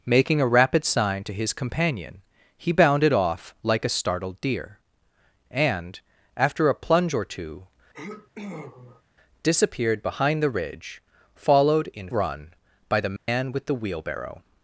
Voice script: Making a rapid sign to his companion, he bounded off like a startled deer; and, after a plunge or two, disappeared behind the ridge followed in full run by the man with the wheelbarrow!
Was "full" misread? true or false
true